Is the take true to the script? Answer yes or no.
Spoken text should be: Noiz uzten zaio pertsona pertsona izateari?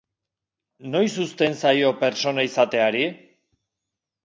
no